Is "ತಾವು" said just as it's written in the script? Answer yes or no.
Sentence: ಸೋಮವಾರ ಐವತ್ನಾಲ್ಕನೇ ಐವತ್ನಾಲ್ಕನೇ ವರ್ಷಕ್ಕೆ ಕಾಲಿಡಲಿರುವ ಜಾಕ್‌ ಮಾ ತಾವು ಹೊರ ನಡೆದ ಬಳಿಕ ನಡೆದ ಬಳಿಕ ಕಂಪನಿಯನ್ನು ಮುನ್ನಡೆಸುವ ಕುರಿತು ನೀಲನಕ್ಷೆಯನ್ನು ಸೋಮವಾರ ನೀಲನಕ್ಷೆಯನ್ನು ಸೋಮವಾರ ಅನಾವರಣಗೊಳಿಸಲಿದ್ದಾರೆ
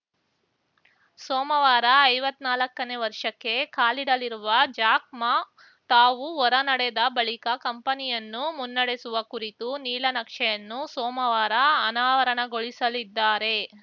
yes